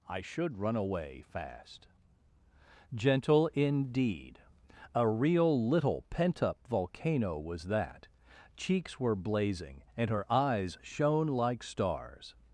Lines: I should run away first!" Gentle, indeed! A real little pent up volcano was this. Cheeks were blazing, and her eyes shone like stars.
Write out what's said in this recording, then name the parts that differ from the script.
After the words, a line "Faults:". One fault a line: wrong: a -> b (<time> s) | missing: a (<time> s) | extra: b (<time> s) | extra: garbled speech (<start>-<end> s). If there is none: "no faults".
I should run away fast!" Gentle, indeed! A real little pent up volcano was that. Cheeks were blazing, and her eyes shone like stars.
Faults:
wrong: first -> fast (1.2 s)
wrong: this -> that (7.7 s)